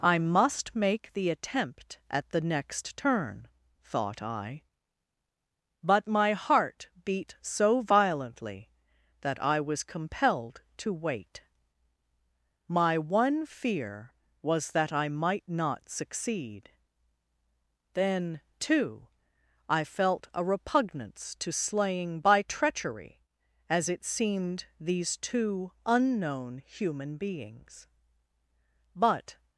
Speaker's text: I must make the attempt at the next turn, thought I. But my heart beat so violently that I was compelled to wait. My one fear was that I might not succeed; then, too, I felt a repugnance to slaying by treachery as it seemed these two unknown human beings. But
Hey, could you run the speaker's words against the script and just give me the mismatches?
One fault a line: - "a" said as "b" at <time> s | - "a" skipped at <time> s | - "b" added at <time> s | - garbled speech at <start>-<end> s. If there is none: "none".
none